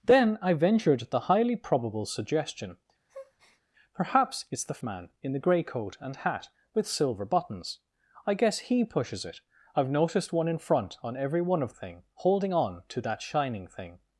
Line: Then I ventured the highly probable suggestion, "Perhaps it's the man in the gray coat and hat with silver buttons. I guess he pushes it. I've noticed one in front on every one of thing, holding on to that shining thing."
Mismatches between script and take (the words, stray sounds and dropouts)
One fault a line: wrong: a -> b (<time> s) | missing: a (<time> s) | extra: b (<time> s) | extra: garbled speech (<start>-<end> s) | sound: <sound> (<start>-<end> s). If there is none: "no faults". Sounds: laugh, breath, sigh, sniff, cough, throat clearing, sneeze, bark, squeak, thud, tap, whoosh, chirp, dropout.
sound: breath (3.1-3.6 s)